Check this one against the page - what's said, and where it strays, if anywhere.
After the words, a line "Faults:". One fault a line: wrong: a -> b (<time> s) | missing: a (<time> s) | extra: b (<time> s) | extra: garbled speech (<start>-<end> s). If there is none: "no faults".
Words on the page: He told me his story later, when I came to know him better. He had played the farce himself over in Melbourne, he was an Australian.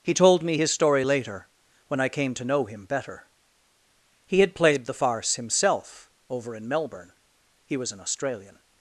He told me his story later, when I came to know him better. He had played the farce himself over in Melbourne, he was an Australian.
Faults:
no faults